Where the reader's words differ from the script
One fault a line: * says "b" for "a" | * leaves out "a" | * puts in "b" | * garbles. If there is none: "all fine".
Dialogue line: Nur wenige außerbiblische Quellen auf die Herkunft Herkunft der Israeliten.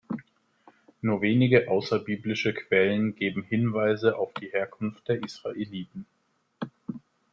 * puts in "geben Hinweise"
* leaves out "Herkunft"